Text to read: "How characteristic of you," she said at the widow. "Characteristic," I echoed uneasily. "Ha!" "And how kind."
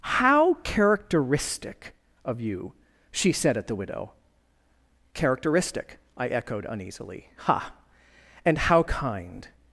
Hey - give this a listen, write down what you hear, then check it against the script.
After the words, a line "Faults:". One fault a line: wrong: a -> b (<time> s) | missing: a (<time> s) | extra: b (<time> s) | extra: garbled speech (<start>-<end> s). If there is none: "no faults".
"How characteristic of you," she said at the widow. "Characteristic," I echoed uneasily. "Ha!" "And how kind."
Faults:
no faults